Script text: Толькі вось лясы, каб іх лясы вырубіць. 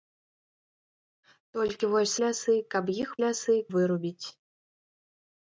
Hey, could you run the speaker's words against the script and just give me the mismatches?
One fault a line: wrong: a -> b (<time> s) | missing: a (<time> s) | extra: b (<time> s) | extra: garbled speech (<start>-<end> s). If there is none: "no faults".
no faults